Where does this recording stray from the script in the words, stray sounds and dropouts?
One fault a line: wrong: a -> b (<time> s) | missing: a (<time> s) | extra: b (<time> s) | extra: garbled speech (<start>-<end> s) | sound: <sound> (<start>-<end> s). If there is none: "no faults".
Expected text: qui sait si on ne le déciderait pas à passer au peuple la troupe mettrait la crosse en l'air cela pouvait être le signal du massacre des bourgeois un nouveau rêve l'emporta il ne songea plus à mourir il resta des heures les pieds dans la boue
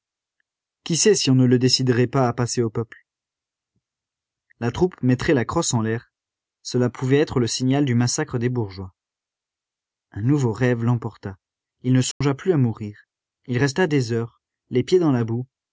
sound: dropout (12.1-12.2 s)